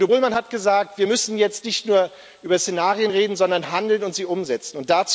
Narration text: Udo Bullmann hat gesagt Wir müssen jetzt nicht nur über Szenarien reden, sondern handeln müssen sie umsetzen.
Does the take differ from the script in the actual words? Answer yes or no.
yes